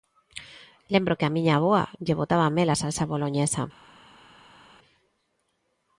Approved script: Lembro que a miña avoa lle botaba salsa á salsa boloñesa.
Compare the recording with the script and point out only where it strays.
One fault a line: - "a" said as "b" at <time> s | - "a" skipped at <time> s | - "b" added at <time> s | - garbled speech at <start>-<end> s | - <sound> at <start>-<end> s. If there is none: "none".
- "salsa" said as "mel" at 2.6 s